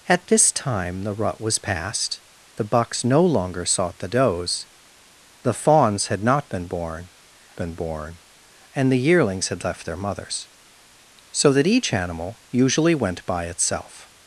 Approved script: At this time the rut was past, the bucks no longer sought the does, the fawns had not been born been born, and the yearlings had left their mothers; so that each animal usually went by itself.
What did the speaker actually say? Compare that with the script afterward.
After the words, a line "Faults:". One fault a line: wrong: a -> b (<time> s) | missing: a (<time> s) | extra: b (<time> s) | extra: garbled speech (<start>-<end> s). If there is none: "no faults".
At this time the rut was past, the bucks no longer sought the does, the fawns had not been born been born, and the yearlings had left their mothers; so that each animal usually went by itself.
Faults:
no faults